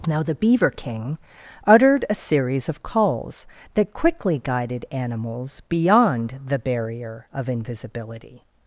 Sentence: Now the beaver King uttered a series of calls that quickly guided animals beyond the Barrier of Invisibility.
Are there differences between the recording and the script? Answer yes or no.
no